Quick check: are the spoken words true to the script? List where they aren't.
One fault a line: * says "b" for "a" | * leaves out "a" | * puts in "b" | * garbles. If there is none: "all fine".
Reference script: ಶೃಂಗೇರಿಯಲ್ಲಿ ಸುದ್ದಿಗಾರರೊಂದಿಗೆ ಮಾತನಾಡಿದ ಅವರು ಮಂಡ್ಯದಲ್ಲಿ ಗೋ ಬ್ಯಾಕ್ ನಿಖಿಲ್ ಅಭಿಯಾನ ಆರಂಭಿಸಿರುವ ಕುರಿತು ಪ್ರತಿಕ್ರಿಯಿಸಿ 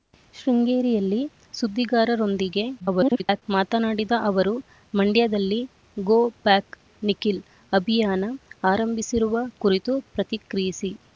* garbles